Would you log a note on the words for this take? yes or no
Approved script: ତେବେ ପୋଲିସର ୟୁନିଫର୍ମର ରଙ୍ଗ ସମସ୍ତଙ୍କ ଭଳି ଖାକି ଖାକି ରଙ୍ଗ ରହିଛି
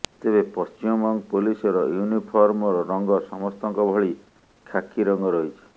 yes